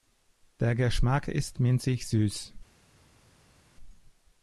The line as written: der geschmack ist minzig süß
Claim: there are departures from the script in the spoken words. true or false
false